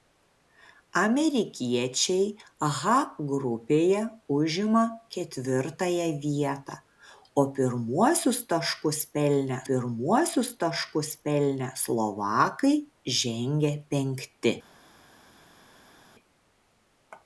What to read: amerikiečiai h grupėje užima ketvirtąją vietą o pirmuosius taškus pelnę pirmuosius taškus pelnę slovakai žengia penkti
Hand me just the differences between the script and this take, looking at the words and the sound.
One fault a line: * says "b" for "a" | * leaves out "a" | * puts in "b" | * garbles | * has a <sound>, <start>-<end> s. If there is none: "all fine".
all fine